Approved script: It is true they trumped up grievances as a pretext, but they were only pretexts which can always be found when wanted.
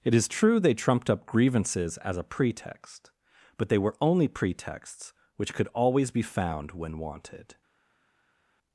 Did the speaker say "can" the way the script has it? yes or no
no